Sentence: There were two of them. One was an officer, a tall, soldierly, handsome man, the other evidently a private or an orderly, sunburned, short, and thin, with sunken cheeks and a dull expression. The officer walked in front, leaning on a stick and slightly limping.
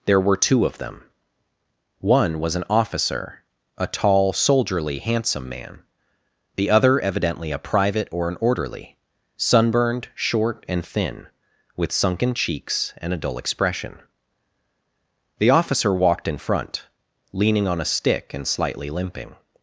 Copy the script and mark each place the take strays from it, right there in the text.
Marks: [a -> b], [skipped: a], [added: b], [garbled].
There were two of them. One was an officer, a tall, soldierly, handsome man, the other evidently a private or an orderly, sunburned, short, and thin, with sunken cheeks and a dull expression. The officer walked in front, leaning on a stick and slightly limping.